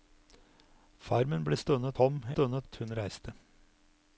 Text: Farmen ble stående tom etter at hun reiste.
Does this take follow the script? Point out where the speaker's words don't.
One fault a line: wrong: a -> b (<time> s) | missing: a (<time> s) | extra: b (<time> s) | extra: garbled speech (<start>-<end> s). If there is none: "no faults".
wrong: etter -> stående (2.3 s)